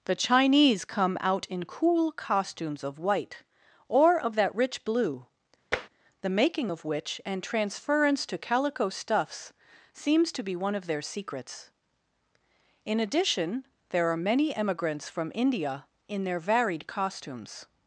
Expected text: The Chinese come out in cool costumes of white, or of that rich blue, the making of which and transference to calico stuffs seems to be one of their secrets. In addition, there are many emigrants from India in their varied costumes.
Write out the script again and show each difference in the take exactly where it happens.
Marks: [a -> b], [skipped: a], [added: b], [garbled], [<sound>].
The Chinese come out in cool costumes of white, or of that rich blue, [tap] the making of which and transference to calico stuffs seems to be one of their secrets. In addition, there are many emigrants from India in their varied costumes.